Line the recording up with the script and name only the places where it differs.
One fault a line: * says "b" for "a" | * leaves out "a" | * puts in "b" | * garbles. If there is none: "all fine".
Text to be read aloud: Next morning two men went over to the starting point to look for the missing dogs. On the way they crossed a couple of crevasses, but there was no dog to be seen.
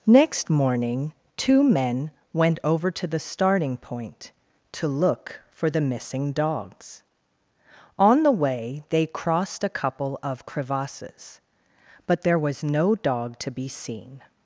all fine